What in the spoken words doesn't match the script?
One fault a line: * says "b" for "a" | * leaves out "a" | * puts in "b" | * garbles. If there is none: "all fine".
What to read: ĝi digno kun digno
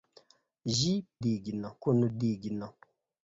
all fine